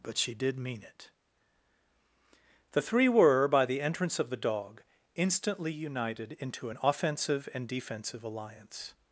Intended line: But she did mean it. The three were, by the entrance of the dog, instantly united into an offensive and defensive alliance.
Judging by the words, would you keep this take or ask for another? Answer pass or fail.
pass